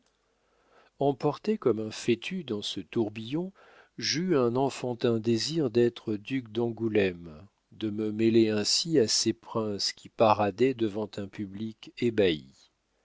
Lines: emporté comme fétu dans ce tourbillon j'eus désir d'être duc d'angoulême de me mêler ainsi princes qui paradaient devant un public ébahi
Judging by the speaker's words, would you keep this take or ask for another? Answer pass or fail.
fail